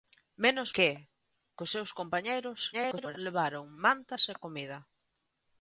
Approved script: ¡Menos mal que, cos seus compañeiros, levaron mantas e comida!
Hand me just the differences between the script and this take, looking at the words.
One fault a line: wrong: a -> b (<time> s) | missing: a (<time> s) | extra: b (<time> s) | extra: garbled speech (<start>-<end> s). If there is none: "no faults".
missing: mal (0.7 s)
extra: garbled speech (2.7-3.2 s)